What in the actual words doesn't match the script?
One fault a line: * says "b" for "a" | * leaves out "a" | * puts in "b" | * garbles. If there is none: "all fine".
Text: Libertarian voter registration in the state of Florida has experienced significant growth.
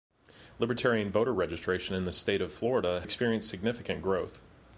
* leaves out "has"